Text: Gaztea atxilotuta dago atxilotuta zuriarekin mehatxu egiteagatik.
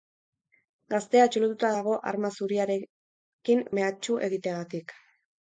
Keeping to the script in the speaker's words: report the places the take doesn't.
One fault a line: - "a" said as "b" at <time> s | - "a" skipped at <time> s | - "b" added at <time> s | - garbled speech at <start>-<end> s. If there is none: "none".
- "atxilotuta" said as "arma" at 2.1 s